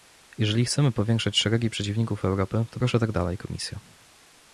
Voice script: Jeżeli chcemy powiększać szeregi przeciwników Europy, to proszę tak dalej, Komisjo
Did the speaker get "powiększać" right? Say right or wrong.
right